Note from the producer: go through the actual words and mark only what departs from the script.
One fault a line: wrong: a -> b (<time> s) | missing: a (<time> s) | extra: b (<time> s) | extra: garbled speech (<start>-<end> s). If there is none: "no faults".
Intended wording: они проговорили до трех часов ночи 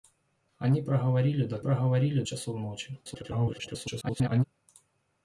wrong: трех -> проговорили (1.6 s)
extra: garbled speech (3.0-4.4 s)